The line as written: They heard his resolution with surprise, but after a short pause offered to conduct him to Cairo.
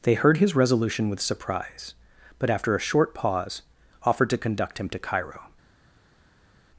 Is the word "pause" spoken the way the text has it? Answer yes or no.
yes